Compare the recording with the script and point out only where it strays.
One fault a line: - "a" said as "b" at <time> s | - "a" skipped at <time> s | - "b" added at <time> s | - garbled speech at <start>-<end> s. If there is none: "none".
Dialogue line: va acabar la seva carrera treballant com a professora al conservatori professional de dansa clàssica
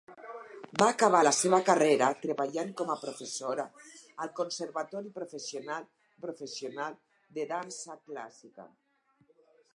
- "professional" added at 6.3 s